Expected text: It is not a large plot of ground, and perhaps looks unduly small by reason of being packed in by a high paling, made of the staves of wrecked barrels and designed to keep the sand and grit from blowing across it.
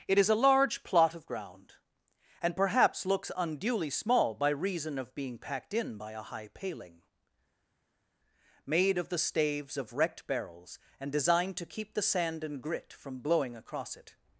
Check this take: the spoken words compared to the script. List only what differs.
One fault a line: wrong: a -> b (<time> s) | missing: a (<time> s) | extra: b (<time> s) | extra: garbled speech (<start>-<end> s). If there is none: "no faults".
missing: not (0.3 s)